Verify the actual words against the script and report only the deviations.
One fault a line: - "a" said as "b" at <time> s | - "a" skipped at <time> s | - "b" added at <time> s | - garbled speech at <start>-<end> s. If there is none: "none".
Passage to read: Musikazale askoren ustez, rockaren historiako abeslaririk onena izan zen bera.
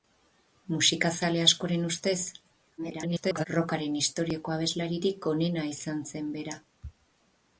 - garbled speech at 2.8-3.5 s